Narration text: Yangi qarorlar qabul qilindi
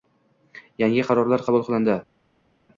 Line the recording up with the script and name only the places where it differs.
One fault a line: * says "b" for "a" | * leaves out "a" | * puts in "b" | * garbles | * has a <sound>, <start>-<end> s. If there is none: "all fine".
all fine